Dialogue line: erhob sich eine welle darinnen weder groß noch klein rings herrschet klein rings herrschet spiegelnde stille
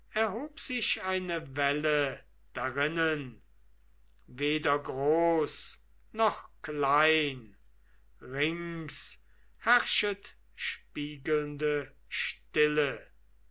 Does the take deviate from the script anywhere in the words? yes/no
yes